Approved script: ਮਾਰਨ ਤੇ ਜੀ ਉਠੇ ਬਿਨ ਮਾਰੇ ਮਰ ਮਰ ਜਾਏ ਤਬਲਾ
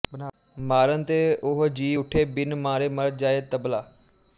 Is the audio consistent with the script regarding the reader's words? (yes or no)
no